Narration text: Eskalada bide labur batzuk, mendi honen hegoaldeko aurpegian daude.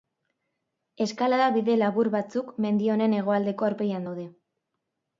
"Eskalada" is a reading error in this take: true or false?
false